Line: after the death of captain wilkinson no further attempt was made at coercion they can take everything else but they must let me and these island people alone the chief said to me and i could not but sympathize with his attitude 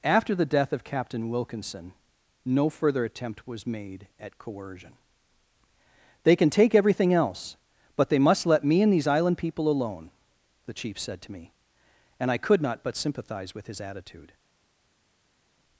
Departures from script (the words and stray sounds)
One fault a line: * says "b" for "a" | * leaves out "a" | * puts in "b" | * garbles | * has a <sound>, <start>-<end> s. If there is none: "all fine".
all fine